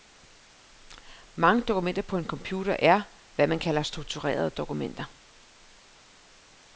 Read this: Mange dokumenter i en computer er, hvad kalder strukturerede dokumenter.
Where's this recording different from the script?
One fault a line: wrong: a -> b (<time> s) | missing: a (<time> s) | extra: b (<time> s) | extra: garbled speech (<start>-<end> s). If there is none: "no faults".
wrong: i -> på (2.0 s)
extra: man (3.5 s)